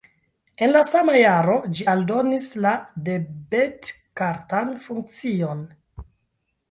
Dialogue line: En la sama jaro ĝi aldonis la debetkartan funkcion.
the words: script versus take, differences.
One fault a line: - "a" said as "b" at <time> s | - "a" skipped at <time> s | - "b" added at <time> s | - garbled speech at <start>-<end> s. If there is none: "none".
none